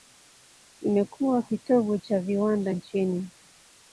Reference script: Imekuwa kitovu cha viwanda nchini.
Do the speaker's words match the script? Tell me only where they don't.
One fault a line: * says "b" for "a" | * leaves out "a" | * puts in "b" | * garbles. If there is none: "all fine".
all fine